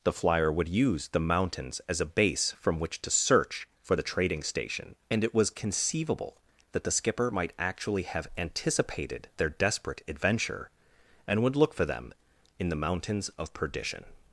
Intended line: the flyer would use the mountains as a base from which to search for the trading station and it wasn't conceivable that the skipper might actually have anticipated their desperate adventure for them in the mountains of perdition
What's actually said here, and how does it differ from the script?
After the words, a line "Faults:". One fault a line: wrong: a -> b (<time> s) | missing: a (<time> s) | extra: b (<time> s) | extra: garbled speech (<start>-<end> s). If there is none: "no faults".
the flyer would use the mountains as a base from which to search for the trading station and it was conceivable that the skipper might actually have anticipated their desperate adventure and would look for them in the mountains of perdition
Faults:
wrong: wasn't -> was (5.3 s)
extra: and would look (11.3 s)